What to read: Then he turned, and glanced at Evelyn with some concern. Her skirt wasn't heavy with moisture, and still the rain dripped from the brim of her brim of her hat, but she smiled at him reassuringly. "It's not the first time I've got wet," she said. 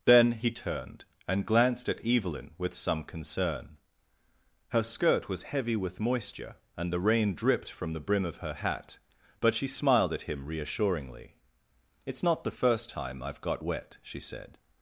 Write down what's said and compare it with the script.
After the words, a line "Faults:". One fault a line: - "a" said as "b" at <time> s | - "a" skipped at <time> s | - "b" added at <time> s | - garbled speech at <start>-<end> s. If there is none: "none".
Then he turned, and glanced at Evelyn with some concern. Her skirt was heavy with moisture, and the rain dripped from the brim of her hat, but she smiled at him reassuringly. "It's not the first time I've got wet," she said.
Faults:
- "wasn't" said as "was" at 5.3 s
- "still" skipped at 6.9 s
- "brim of her" skipped at 8.5 s